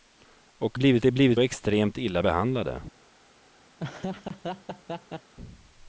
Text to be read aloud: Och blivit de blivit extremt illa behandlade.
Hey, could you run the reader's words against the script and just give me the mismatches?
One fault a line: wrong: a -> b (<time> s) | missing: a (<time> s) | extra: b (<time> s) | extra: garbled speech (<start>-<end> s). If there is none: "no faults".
no faults